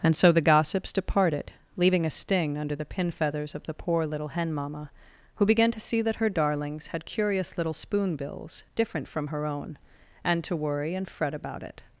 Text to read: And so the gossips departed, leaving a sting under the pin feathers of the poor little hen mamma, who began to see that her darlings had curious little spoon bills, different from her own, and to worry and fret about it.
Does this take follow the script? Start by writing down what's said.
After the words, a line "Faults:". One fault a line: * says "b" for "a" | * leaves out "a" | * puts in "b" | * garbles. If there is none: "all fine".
And so the gossips departed, leaving a sting under the pin feathers of the poor little hen mamma, who began to see that her darlings had curious little spoon bills, different from her own, and to worry and fret about it.
Faults:
all fine